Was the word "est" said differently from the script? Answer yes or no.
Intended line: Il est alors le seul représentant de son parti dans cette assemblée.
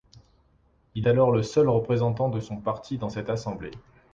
yes